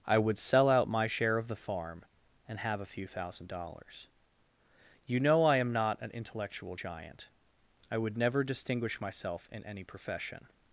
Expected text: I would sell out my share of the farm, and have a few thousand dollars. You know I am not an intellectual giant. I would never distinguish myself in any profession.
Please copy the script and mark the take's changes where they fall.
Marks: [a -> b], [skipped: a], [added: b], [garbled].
I would sell out my share of the farm, and have a few thousand dollars. You know I am not an intellectual giant. I would never distinguish myself in any profession.